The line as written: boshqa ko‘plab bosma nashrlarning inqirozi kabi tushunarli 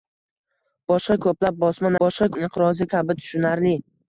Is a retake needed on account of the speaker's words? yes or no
yes